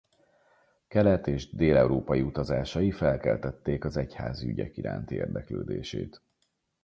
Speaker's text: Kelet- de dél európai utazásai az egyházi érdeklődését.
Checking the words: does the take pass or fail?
fail